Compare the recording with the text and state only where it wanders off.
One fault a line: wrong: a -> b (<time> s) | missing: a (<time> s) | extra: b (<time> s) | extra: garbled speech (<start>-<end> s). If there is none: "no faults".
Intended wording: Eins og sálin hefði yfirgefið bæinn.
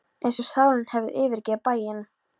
no faults